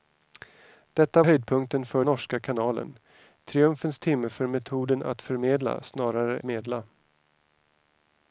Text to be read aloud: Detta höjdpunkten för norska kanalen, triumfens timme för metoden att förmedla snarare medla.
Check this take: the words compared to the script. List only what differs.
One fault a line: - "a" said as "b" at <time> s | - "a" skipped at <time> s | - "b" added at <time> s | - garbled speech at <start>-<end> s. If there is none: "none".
none